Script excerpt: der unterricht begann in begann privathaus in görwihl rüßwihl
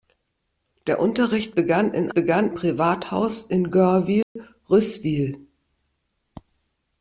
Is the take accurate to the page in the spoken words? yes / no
yes